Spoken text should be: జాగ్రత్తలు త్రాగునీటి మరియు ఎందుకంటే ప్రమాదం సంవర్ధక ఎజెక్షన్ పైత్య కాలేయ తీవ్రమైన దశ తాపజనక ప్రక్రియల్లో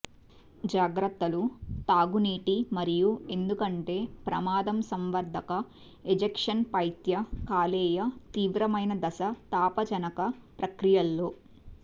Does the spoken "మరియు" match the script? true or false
true